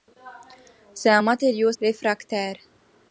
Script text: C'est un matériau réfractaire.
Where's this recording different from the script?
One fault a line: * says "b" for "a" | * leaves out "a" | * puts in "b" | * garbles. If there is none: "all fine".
all fine